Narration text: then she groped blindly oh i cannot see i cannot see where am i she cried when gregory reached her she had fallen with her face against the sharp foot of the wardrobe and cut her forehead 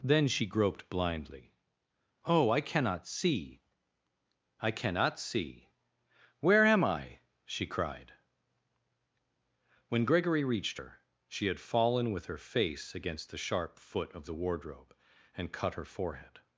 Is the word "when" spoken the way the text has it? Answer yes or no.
yes